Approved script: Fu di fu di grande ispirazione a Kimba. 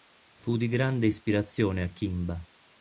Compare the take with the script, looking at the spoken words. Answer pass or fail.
fail